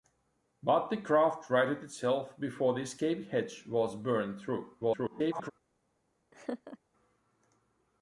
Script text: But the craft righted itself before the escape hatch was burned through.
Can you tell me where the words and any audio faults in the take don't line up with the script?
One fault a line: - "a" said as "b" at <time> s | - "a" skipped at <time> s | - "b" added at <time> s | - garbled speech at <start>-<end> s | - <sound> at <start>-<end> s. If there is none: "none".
- garbled speech at 4.8-5.5 s
- laugh at 6.3-6.8 s